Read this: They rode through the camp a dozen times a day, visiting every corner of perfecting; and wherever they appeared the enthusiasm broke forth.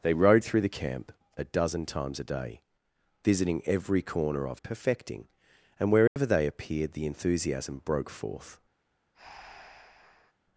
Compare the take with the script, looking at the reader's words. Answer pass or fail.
pass